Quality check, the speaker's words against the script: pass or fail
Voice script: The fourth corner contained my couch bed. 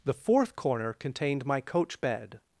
fail